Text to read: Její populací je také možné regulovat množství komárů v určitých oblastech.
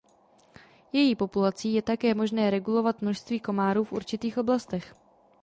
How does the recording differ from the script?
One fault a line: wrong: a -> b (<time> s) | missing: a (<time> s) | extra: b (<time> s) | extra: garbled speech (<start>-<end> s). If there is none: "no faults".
no faults